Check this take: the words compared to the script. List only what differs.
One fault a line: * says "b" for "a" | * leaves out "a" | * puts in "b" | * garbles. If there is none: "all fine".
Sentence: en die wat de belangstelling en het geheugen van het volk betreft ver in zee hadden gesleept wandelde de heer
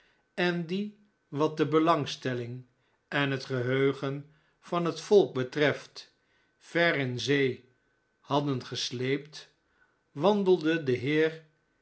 all fine